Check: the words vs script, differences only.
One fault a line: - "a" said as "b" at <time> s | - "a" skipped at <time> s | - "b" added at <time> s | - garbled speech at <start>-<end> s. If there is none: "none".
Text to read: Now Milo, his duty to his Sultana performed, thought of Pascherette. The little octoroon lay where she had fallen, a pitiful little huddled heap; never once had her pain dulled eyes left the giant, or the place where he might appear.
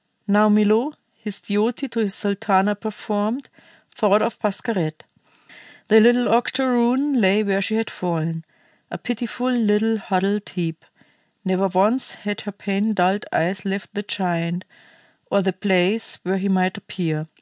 none